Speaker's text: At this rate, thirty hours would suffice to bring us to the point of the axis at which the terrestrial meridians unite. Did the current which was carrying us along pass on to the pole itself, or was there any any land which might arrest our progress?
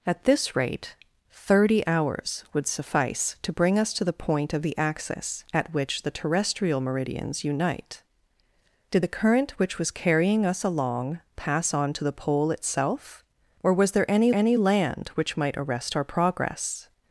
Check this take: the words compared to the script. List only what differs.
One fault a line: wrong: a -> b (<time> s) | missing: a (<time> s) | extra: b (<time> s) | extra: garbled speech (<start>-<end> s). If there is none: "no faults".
no faults